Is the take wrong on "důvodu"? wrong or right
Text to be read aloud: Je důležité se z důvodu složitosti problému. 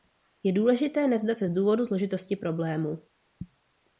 right